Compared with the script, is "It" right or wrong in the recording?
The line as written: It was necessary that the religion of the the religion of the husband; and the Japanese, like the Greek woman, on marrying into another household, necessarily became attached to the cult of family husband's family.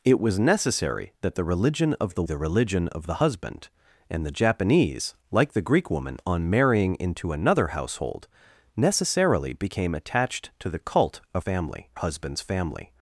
right